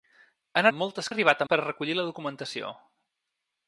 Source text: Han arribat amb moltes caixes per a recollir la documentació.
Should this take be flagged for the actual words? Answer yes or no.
yes